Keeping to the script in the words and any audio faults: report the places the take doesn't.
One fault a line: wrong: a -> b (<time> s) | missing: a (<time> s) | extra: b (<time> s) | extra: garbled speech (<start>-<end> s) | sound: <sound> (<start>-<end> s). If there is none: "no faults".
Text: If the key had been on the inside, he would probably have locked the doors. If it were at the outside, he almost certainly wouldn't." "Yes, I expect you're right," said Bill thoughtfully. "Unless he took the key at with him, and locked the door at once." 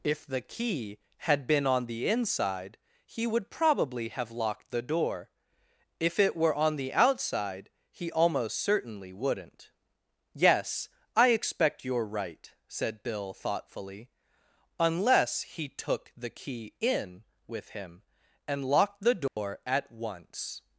wrong: doors -> door (4.8 s)
wrong: at -> on (6.5 s)
wrong: at -> in (16.8 s)
sound: dropout (19.3-19.4 s)